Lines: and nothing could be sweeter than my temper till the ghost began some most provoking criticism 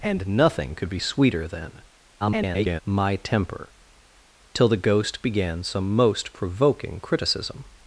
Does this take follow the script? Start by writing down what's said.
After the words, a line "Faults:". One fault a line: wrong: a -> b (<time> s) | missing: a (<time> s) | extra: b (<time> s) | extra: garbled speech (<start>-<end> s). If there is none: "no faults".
and nothing could be sweeter than [garbled] my temper till the ghost began some most provoking criticism
Faults:
extra: garbled speech (2.2-2.8 s)